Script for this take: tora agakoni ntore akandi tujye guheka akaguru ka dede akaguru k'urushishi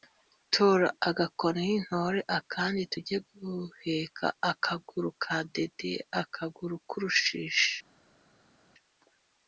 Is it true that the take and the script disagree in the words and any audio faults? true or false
false